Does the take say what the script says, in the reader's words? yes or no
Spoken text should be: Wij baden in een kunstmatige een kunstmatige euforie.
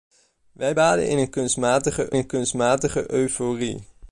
yes